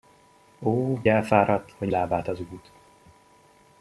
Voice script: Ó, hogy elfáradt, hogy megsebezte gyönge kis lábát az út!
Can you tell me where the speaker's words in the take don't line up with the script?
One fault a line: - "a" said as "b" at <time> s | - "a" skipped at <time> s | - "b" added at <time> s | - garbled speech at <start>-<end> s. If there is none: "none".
- "hogy" skipped at 1.0 s
- "megsebezte gyönge kis" skipped at 1.9 s